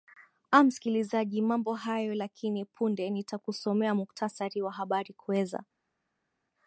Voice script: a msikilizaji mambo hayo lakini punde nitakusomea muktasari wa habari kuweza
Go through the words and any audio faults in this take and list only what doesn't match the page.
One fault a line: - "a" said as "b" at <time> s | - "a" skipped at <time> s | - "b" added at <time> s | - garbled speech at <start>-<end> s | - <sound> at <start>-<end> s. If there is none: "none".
none